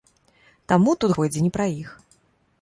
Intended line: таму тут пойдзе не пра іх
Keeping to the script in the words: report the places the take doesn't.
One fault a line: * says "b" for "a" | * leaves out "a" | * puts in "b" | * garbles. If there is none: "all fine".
all fine